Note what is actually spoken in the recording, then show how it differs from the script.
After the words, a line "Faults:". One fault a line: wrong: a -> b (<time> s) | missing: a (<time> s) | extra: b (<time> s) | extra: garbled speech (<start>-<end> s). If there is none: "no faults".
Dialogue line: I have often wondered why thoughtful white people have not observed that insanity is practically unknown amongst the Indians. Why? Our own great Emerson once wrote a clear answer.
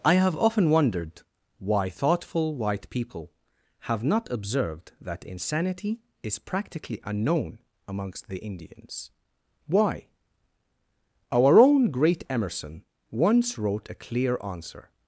I have often wondered why thoughtful white people have not observed that insanity is practically unknown amongst the Indians. Why? Our own great Emerson once wrote a clear answer.
Faults:
no faults